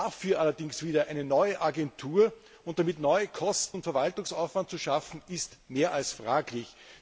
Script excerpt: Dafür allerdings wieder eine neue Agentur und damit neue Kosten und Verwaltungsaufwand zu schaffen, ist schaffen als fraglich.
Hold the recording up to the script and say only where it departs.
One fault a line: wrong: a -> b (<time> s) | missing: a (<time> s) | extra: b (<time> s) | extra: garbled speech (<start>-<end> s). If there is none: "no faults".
wrong: schaffen -> mehr (5.7 s)